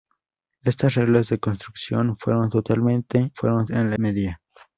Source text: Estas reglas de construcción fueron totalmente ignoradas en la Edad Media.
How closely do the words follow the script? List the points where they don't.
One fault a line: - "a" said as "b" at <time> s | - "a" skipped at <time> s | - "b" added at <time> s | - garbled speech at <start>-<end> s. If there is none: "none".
- "ignoradas" said as "fueron" at 3.3 s
- "Edad" skipped at 4.0 s